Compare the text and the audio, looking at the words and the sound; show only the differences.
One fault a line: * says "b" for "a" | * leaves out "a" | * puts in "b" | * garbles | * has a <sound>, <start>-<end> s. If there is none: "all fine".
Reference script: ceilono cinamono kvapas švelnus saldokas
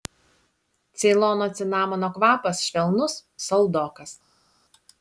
all fine